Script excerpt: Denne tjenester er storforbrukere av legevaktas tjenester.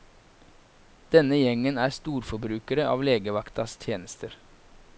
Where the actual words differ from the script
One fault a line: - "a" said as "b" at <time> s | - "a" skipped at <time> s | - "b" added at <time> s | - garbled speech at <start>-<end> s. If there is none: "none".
- "tjenester" said as "gjengen" at 1.4 s